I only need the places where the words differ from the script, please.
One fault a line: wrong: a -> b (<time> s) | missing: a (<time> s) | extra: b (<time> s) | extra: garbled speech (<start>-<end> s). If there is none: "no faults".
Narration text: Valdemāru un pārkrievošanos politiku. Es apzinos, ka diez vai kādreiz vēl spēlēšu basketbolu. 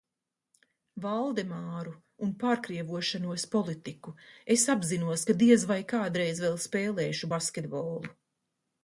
no faults